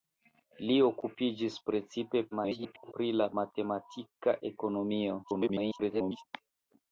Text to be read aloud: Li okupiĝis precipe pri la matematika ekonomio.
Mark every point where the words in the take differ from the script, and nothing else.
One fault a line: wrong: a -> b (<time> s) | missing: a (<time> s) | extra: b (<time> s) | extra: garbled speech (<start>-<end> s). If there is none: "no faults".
extra: garbled speech (2.3-2.9 s)
extra: garbled speech (5.2-6.3 s)